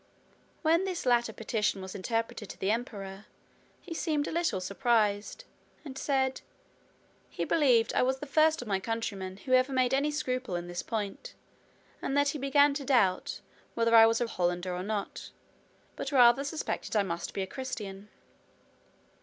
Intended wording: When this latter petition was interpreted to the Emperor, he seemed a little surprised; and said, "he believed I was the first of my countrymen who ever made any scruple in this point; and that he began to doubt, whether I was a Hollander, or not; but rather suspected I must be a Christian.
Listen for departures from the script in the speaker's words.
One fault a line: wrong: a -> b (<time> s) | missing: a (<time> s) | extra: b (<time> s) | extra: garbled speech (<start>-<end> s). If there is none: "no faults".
no faults